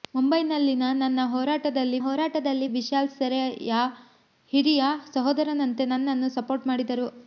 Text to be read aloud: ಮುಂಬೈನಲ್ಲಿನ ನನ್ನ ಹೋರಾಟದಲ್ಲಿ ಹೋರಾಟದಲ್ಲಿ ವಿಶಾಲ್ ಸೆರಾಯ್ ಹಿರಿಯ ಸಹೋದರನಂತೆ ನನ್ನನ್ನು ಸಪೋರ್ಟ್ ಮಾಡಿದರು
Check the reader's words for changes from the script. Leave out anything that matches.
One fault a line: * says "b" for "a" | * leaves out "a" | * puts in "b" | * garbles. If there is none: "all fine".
all fine